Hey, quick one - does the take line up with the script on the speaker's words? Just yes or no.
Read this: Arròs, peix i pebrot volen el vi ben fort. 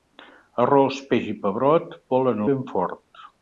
no